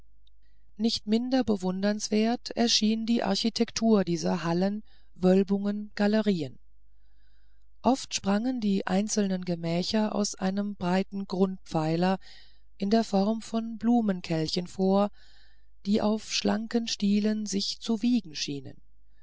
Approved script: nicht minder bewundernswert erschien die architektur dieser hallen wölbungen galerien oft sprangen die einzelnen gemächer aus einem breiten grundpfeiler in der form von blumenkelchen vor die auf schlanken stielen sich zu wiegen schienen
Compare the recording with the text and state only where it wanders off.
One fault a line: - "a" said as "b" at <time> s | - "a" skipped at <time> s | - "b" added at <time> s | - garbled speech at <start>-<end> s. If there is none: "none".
none